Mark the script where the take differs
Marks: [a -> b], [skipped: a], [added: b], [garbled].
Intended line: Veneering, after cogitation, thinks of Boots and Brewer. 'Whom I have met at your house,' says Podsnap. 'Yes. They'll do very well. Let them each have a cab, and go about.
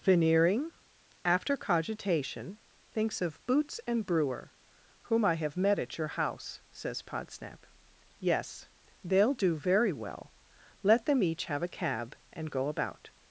Veneering, after cogitation, thinks of Boots and Brewer. 'Whom I have met at your house,' says Podsnap. 'Yes. They'll do very well. Let them each have a cab, and go about.